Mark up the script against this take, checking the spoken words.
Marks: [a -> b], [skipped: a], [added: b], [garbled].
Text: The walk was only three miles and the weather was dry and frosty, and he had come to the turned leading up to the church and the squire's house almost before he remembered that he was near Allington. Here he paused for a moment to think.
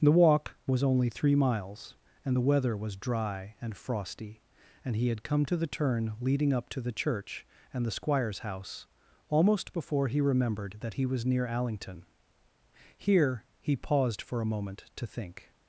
The walk was only three miles and the weather was dry and frosty, and he had come to the [turned -> turn] leading up to the church and the squire's house almost before he remembered that he was near Allington. Here he paused for a moment to think.